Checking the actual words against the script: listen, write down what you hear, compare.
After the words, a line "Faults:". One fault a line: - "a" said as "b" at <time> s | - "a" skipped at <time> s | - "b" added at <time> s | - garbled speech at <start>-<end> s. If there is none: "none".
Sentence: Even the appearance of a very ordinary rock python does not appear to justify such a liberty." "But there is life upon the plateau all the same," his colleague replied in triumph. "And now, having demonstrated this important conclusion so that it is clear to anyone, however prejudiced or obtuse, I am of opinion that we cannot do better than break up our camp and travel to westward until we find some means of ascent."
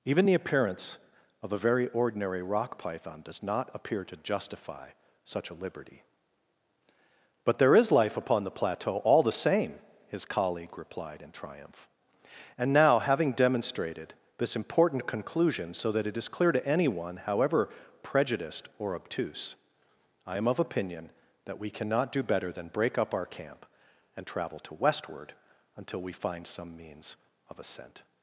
Even the appearance of a very ordinary rock python does not appear to justify such a liberty." "But there is life upon the plateau all the same," his colleague replied in triumph. "And now, having demonstrated this important conclusion so that it is clear to anyone, however prejudiced or obtuse, I am of opinion that we cannot do better than break up our camp and travel to westward until we find some means of ascent."
Faults:
none